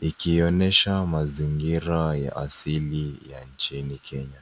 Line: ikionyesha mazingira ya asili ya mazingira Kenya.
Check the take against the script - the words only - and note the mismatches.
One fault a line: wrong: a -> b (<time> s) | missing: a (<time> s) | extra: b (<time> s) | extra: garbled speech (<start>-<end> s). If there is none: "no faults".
wrong: mazingira -> nchini (3.4 s)